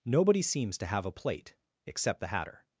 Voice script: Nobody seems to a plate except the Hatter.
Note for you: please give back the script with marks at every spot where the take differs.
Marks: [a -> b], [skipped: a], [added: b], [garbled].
Nobody seems to [added: have] a plate except the Hatter.